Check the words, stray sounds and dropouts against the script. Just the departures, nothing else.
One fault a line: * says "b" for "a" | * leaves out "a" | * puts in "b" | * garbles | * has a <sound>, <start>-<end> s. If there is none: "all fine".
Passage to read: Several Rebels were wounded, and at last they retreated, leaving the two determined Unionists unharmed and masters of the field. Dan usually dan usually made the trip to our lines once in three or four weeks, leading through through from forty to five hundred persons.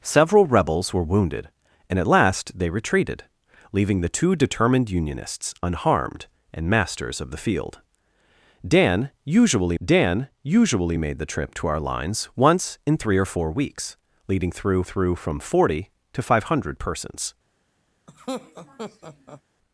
* has a laugh, 18.1-19.4 s